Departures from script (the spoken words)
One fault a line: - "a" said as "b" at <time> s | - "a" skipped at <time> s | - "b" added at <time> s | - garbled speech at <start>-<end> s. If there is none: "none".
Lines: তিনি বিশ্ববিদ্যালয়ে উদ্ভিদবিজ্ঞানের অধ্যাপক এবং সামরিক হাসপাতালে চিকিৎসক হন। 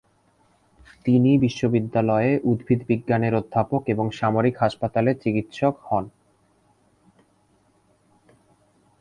none